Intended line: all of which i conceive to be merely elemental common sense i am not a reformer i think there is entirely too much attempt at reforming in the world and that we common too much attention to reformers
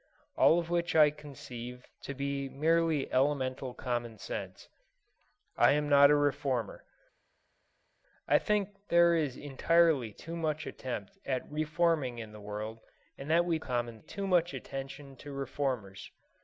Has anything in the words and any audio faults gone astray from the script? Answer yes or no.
no